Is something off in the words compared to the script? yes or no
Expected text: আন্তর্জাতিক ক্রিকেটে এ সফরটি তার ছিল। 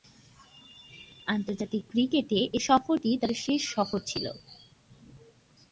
yes